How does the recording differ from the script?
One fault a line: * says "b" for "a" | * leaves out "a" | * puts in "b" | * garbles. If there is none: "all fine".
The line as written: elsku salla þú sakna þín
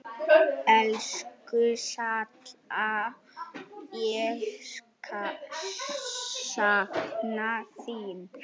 * says "ég" for "þú"